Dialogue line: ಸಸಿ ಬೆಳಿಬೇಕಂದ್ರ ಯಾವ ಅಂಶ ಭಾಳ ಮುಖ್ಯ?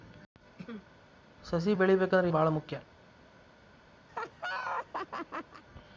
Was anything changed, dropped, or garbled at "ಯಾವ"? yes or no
yes